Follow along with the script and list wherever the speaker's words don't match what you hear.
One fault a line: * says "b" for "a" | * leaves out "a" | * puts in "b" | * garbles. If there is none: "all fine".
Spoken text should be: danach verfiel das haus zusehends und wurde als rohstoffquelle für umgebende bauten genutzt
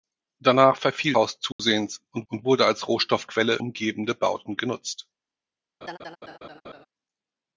* leaves out "das"
* puts in "und"
* leaves out "für"